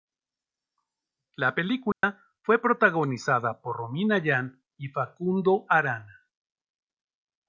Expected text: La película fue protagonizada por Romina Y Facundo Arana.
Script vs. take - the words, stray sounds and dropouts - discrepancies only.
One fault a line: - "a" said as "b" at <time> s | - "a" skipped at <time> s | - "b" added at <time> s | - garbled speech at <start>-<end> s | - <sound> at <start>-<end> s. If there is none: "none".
- dropout at 1.9-2.0 s
- "Yan" added at 4.2 s